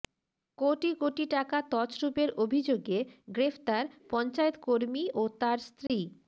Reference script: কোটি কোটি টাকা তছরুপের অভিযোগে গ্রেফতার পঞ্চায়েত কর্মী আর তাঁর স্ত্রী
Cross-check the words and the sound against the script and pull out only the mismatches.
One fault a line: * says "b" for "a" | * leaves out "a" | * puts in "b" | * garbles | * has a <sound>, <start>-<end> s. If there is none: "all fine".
* says "ও" for "আর"
* has a dropout, 5.9-5.9 s